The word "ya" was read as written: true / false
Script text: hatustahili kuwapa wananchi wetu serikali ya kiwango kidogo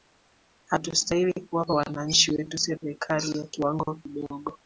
true